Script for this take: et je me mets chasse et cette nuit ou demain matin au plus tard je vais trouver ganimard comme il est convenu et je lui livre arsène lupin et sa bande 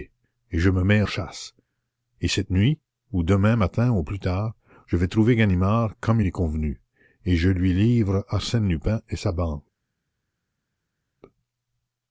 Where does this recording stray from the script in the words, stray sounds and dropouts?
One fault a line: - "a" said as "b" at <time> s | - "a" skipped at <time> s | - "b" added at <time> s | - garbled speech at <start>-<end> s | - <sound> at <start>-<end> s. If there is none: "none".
none